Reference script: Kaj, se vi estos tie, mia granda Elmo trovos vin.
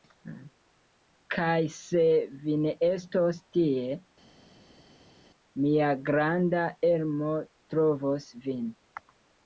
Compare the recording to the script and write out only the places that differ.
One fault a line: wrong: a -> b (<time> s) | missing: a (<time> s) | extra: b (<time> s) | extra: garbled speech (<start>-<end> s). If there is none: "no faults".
extra: ne (2.6 s)